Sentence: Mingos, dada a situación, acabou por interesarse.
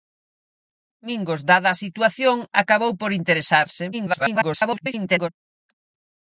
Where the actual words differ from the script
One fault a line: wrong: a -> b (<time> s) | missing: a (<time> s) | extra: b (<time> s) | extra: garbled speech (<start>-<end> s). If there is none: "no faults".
extra: garbled speech (3.9-5.3 s)